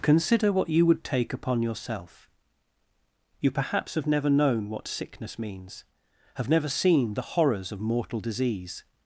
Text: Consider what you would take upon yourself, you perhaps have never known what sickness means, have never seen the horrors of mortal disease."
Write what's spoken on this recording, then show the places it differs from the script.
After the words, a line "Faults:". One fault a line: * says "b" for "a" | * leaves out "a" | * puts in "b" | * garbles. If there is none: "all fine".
Consider what you would take upon yourself, you perhaps have never known what sickness means, have never seen the horrors of mortal disease."
Faults:
all fine